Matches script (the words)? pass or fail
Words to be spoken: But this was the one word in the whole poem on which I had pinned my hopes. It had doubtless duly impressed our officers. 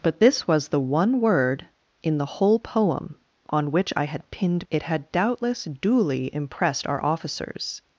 fail